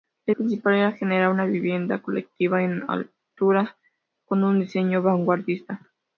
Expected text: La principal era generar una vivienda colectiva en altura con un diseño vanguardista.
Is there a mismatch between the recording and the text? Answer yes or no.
no